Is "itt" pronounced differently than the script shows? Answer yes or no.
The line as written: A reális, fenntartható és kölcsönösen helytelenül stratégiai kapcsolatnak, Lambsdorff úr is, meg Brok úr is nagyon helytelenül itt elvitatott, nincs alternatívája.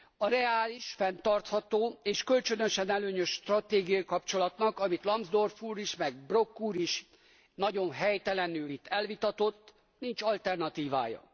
no